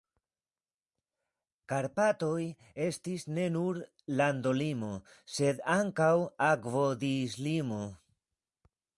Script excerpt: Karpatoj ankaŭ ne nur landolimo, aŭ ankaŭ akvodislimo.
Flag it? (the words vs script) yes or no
yes